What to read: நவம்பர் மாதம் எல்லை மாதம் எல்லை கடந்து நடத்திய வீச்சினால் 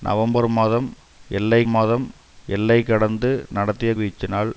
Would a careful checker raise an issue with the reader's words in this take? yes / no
no